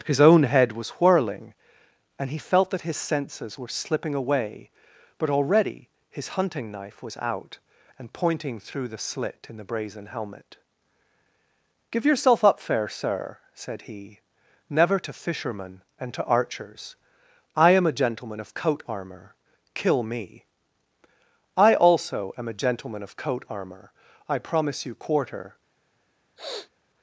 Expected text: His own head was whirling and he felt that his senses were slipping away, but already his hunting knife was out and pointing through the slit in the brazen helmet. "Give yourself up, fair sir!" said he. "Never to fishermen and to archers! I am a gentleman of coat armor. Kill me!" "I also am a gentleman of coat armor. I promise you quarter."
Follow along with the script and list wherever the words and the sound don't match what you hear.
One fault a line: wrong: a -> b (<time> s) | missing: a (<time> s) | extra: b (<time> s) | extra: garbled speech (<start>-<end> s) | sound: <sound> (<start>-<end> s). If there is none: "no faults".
sound: sniff (26.4-26.7 s)